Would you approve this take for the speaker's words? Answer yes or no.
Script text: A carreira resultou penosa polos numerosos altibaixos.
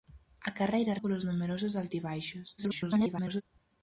no